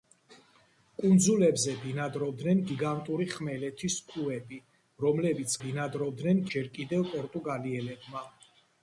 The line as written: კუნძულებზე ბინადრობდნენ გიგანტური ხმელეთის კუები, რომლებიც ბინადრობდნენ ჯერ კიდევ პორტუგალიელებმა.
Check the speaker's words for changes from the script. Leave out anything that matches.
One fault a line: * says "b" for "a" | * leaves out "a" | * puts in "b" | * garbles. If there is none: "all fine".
all fine